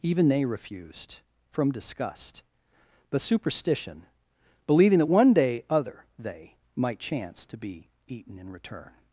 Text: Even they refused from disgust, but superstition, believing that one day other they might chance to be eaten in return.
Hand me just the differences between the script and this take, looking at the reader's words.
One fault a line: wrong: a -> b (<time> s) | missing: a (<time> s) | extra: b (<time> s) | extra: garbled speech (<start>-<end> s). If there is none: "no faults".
no faults